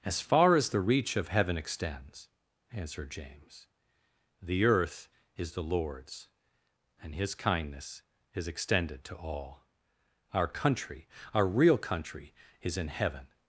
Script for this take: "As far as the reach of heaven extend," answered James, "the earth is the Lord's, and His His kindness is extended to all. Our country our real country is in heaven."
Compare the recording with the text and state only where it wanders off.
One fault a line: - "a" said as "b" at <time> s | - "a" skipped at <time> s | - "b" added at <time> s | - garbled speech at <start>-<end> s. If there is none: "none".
- "extend" said as "extends" at 1.6 s
- "His" skipped at 7.3 s